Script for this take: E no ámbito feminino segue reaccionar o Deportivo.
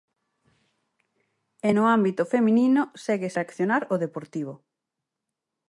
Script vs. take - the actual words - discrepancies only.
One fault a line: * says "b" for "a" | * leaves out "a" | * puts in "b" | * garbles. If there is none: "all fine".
all fine